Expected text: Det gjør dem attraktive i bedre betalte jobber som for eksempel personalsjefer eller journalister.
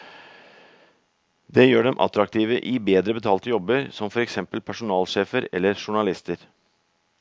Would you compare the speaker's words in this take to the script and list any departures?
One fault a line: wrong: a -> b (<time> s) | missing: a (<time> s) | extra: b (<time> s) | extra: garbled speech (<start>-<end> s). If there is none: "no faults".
no faults